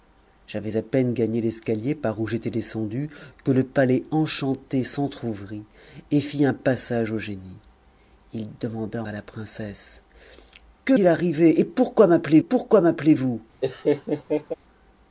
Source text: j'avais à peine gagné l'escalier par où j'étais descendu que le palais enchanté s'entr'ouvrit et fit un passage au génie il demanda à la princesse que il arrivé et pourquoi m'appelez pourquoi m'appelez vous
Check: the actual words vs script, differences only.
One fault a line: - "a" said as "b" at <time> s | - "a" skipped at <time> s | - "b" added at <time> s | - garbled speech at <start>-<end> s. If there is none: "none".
none